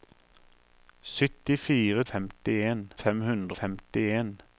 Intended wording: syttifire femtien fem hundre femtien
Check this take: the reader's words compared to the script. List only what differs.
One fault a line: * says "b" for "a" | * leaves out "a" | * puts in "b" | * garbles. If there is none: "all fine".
all fine